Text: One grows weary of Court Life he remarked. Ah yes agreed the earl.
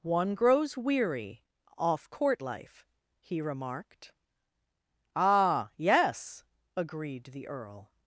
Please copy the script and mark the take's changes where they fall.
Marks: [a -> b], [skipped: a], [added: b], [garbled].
One grows weary [of -> off] Court Life he remarked. Ah yes agreed the earl.